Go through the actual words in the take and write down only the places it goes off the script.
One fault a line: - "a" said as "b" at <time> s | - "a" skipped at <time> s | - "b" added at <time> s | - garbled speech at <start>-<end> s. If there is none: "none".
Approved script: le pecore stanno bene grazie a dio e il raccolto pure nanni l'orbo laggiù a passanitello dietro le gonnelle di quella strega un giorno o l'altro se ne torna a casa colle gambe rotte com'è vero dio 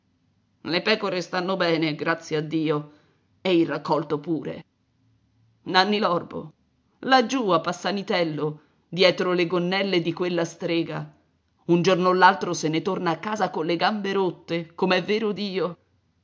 none